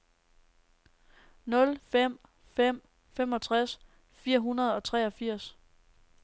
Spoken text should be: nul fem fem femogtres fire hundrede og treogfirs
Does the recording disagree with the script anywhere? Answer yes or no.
no